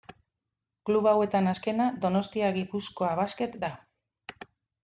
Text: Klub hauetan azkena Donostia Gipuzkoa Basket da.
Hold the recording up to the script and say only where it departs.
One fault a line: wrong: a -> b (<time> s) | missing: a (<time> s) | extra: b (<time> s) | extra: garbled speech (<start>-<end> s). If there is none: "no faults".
no faults